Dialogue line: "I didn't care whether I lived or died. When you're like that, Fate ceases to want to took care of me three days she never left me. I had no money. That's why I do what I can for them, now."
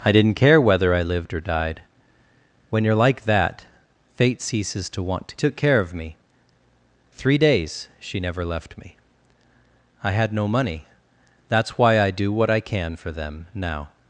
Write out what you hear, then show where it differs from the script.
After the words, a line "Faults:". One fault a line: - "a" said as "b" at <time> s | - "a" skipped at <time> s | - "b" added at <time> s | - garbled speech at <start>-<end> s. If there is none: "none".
"I didn't care whether I lived or died. When you're like that, Fate ceases to want to took care of me three days she never left me. I had no money. That's why I do what I can for them, now."
Faults:
none